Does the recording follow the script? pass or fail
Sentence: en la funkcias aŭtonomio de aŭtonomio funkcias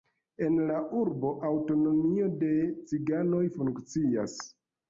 fail